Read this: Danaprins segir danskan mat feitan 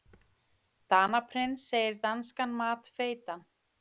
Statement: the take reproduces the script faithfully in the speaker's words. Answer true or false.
true